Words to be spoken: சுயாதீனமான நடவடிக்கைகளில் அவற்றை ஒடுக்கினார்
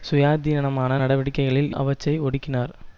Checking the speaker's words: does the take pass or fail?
pass